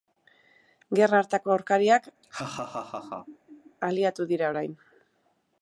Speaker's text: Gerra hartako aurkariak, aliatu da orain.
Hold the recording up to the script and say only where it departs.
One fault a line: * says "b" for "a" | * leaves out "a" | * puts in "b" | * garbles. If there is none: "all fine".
* says "dira" for "da"